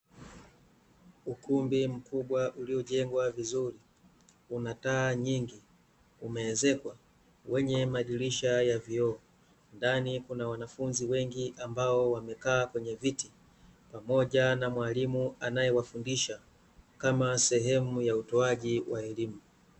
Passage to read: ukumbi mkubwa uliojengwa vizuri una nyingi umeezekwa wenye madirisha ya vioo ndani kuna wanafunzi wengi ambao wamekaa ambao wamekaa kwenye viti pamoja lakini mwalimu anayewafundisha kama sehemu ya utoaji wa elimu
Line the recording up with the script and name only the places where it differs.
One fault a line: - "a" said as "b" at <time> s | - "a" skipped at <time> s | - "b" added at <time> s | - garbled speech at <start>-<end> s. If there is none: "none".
- "taa" added at 4.7 s
- "ambao wamekaa" skipped at 12.7 s
- "lakini" said as "na" at 14.5 s